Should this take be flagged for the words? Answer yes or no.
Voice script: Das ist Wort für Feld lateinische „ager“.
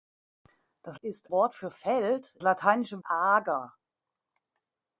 no